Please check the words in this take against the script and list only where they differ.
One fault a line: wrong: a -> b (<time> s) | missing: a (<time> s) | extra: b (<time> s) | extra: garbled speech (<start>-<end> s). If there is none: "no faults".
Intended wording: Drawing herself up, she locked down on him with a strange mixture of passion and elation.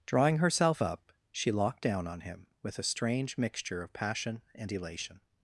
no faults